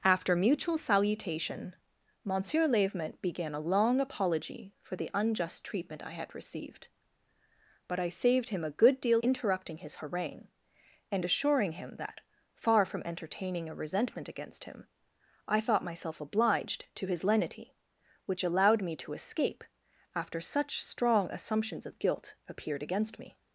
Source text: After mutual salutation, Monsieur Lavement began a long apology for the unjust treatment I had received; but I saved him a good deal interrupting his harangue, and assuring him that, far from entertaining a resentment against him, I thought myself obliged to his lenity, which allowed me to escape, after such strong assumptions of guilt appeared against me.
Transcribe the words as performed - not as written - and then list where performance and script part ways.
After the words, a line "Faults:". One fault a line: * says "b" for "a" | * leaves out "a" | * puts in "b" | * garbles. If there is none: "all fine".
After mutual salutation, Monsieur Lavement began a long apology for the unjust treatment I had received; but I saved him a good deal interrupting his harangue, and assuring him that, far from entertaining a resentment against him, I thought myself obliged to his lenity, which allowed me to escape, after such strong assumptions of guilt appeared against me.
Faults:
all fine